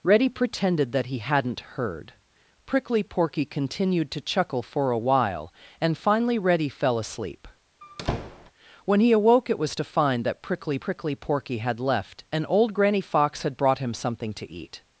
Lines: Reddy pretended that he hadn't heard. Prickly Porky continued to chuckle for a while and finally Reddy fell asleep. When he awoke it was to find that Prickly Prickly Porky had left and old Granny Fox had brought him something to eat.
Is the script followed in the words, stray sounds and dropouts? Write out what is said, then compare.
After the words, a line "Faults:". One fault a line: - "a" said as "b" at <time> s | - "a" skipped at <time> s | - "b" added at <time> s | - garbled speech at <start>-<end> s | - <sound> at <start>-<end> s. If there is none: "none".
Reddy pretended that he hadn't heard. Prickly Porky continued to chuckle for a while and finally Reddy fell asleep. When he awoke it was to find that Prickly Prickly Porky had left and old Granny Fox had brought him something to eat.
Faults:
- squeak at 7.8-8.5 s